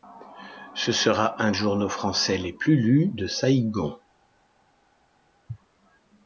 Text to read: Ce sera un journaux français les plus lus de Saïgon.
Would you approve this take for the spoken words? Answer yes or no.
yes